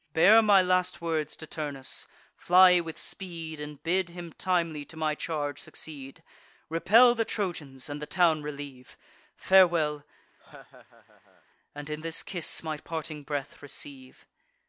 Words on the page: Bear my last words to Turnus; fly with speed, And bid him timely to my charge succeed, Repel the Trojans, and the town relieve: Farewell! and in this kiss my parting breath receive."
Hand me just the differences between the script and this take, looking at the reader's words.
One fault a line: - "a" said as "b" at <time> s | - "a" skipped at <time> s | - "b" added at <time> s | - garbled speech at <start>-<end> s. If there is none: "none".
none